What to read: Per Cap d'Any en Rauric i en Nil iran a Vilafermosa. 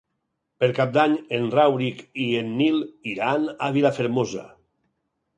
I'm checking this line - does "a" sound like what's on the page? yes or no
yes